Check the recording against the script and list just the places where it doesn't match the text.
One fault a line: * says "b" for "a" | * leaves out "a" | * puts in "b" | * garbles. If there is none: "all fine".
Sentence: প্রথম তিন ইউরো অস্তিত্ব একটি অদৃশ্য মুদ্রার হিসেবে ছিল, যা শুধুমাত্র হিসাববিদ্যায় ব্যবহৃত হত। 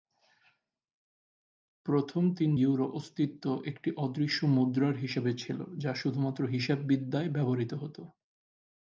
all fine